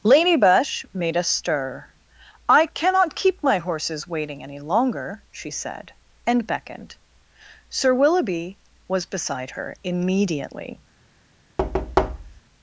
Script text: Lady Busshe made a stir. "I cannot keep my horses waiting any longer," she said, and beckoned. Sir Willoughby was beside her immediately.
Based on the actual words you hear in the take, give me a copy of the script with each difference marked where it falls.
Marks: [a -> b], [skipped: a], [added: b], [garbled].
Lady Busshe made a stir. "I cannot keep my horses waiting any longer," she said, and beckoned. Sir Willoughby was beside her immediately.